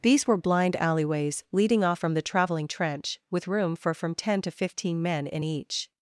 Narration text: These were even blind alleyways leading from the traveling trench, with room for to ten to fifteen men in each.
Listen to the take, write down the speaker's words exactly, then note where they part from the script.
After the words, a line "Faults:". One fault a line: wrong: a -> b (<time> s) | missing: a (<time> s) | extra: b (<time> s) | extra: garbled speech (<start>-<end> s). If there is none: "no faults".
These were blind alleyways leading off from the traveling trench, with room for from ten to fifteen men in each.
Faults:
missing: even (0.4 s)
extra: off (1.8 s)
wrong: to -> from (3.9 s)